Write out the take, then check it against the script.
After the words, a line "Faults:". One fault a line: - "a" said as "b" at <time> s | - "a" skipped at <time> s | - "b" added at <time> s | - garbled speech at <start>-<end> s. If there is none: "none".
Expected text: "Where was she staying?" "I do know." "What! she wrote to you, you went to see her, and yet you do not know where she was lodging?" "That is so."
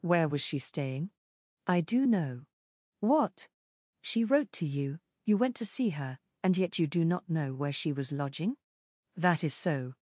"Where was she staying?" "I do know." "What! she wrote to you, you went to see her, and yet you do not know where she was lodging?" "That is so."
Faults:
none